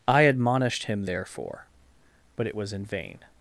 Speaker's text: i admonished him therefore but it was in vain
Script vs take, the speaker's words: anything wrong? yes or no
no